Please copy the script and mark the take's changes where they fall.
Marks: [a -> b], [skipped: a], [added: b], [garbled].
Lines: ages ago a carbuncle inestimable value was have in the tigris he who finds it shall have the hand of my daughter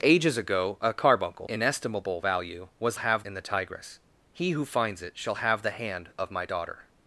ages ago a carbuncle inestimable value was have in the tigris he who finds it shall have the hand of my daughter